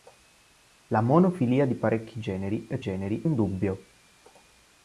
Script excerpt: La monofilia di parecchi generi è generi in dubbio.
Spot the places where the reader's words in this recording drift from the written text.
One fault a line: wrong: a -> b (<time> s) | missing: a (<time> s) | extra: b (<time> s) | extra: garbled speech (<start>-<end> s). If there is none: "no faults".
no faults